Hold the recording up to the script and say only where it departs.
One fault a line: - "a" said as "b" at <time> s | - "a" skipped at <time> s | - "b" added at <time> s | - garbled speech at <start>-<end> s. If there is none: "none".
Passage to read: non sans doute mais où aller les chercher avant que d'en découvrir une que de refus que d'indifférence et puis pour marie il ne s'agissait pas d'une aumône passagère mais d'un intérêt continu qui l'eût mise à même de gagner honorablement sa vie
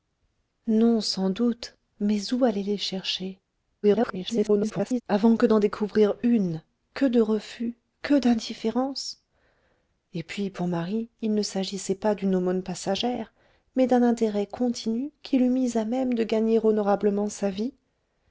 - garbled speech at 3.8-5.0 s